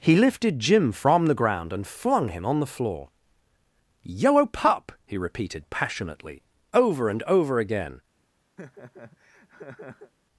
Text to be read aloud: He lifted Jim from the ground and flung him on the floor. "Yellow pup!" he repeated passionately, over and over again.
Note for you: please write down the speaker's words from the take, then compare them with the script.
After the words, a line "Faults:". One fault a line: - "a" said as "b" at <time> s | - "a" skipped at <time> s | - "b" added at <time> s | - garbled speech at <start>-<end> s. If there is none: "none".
He lifted Jim from the ground and flung him on the floor. "Yellow pup!" he repeated passionately, over and over again.
Faults:
none